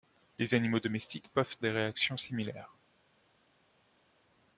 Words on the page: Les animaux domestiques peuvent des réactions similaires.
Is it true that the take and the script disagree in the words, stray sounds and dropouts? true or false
false